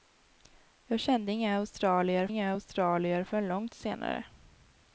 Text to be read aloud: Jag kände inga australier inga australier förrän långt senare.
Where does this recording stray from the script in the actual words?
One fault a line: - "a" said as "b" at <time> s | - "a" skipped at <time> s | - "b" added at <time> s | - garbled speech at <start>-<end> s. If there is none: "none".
none